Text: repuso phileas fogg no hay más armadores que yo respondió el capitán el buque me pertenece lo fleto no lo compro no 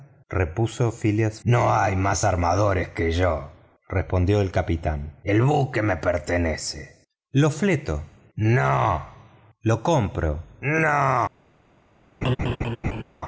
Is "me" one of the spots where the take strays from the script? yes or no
no